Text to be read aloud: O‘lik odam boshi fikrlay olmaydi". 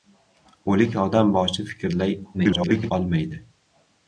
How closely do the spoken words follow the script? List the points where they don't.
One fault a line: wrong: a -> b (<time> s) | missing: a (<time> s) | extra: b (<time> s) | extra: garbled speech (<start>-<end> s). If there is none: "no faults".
extra: garbled speech (2.3-2.9 s)